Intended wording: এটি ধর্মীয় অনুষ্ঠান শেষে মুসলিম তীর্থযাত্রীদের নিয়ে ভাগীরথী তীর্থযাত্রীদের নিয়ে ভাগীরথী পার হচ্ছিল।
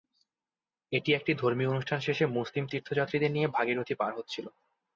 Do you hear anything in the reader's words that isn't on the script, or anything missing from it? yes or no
yes